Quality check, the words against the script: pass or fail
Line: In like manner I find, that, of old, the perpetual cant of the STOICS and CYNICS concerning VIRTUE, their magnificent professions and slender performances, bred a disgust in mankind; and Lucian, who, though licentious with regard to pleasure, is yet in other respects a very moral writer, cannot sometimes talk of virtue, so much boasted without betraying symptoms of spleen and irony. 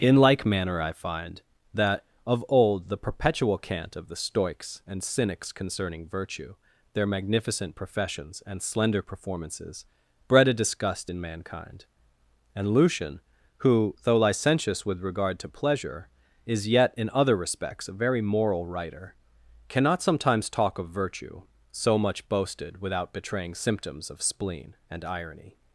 pass